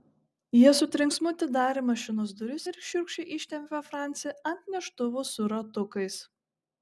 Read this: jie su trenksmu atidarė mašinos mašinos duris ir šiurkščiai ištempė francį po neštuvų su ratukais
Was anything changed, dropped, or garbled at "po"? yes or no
yes